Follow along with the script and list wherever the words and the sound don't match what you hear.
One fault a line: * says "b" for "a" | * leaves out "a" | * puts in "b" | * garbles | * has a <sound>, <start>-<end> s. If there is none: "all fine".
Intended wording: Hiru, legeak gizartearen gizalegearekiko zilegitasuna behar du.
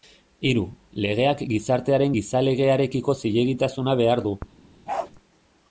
* has a bark, 4.9-5.1 s